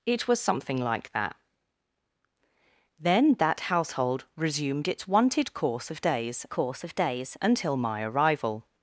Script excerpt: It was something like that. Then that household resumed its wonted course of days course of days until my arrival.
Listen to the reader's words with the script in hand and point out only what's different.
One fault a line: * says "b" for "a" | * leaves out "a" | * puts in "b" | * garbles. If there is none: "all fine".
all fine